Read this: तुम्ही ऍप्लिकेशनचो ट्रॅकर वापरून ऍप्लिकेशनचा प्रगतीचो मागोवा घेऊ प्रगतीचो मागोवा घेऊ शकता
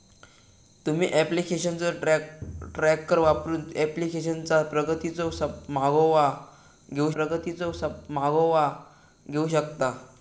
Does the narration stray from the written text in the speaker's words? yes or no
no